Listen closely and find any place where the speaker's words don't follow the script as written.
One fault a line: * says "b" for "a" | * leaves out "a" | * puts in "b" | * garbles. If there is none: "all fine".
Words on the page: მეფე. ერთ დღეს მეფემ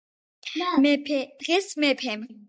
* leaves out "ერთ"